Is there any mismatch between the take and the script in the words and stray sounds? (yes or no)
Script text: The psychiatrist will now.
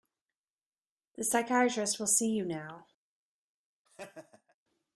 yes